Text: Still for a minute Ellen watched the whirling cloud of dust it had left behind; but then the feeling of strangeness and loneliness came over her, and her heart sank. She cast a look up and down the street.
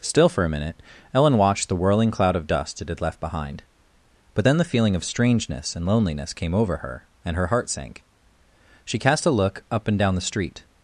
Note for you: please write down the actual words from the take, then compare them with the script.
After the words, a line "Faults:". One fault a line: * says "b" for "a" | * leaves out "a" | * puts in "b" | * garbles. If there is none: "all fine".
Still for a minute Ellen watched the whirling cloud of dust it had left behind; but then the feeling of strangeness and loneliness came over her, and her heart sank. She cast a look up and down the street.
Faults:
all fine